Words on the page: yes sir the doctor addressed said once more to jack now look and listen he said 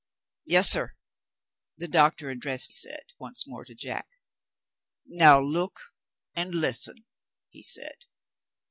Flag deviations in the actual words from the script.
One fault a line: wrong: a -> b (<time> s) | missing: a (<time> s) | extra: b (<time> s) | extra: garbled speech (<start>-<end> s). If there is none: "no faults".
no faults